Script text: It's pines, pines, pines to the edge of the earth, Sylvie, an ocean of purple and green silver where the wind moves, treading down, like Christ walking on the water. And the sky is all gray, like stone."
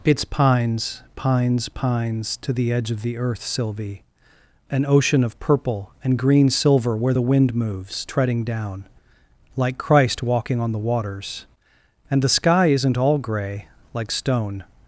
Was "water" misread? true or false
true